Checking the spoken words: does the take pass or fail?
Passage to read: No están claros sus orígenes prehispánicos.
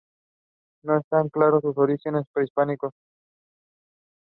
pass